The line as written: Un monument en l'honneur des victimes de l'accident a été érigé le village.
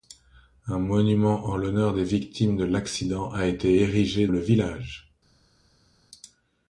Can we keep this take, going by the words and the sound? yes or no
yes